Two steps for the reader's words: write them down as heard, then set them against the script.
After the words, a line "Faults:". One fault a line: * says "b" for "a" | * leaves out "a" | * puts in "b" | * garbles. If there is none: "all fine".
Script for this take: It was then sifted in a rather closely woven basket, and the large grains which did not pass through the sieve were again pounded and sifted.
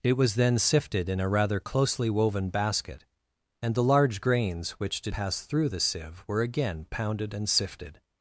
It was then sifted in a rather closely woven basket, and the large grains which did pass through the sieve were again pounded and sifted.
Faults:
* leaves out "not"